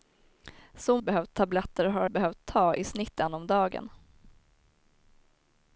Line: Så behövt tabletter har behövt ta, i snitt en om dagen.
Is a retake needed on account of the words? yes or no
no